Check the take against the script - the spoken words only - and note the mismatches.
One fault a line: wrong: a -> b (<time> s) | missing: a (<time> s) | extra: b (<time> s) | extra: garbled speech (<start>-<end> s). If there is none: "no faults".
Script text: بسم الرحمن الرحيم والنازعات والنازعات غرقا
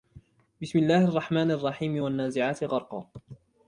extra: الله (0.8 s)
missing: والنازعات (2.6 s)